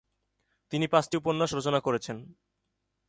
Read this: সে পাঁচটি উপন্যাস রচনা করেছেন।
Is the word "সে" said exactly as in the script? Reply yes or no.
no